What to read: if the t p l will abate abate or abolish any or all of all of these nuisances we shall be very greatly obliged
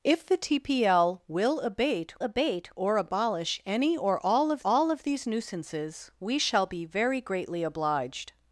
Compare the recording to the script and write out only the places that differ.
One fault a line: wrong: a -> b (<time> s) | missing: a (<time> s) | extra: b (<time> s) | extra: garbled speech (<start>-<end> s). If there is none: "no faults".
no faults